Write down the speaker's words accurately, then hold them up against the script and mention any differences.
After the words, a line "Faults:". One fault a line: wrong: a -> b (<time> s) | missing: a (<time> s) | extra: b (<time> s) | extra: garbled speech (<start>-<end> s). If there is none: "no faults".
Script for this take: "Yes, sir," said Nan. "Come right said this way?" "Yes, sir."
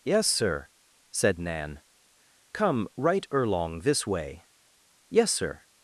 "Yes, sir," said Nan. "Come right erlong this way?" "Yes, sir."
Faults:
wrong: said -> erlong (3.3 s)